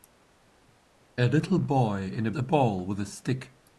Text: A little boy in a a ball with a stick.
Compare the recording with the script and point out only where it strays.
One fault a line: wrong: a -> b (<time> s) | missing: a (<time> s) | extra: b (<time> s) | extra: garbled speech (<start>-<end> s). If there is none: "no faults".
no faults